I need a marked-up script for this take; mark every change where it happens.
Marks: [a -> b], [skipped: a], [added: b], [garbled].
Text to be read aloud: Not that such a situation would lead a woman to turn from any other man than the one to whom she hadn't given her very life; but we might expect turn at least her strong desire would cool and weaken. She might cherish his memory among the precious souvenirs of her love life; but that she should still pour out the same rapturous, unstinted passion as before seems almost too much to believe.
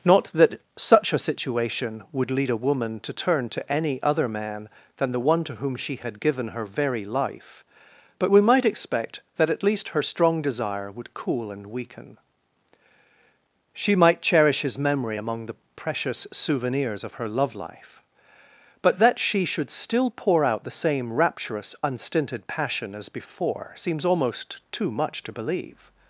Not that such a situation would lead a woman to turn [from -> to] any other man than the one to whom she [hadn't -> had] given her very life; but we might expect [turn -> that] at least her strong desire would cool and weaken. She might cherish his memory among the precious souvenirs of her love life; but that she should still pour out the same rapturous, unstinted passion as before seems almost too much to believe.